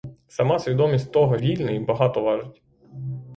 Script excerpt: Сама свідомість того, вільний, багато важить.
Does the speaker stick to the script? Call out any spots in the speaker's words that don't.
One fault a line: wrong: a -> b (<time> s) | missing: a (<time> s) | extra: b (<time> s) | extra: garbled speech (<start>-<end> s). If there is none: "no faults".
no faults